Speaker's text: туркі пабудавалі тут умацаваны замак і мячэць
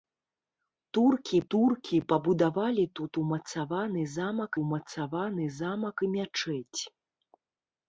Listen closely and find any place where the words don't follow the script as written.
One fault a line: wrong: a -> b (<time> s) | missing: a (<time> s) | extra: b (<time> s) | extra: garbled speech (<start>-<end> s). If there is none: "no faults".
extra: туркі (1.5 s)
extra: умацаваны замак (4.7 s)